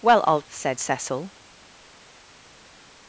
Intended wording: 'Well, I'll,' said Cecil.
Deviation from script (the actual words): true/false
false